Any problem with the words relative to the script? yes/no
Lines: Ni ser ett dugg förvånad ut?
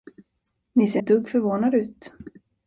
no